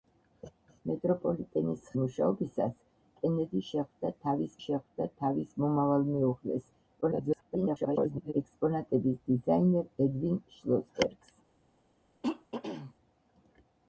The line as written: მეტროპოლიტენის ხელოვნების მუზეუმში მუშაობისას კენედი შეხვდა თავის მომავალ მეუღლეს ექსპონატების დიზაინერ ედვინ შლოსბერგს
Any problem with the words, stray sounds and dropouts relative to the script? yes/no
yes